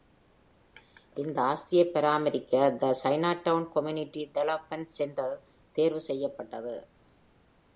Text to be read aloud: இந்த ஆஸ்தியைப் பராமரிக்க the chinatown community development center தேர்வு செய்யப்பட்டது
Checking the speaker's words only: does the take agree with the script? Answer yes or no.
yes